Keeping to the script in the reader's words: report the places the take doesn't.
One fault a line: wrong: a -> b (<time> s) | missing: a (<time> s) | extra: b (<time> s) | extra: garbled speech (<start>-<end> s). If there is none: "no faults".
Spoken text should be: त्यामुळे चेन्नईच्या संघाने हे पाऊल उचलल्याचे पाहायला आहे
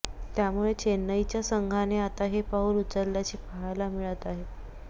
extra: आता (2.0 s)
extra: मिळत (3.9 s)